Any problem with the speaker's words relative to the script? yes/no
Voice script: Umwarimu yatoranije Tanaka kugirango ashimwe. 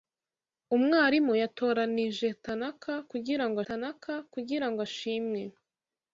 yes